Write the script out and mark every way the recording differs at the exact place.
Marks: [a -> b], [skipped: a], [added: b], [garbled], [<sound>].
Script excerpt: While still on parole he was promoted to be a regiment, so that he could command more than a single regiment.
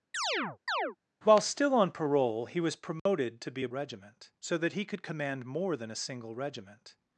[chirp] While still on parole he was promoted [dropout] to be a regiment, so that he could command more than a single regiment.